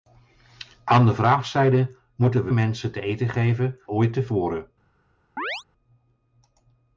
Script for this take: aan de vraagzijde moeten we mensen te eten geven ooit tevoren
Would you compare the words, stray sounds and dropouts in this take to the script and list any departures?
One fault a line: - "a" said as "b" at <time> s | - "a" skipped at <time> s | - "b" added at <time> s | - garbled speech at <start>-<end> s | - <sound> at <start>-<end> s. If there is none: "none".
- chirp at 5.4-5.6 s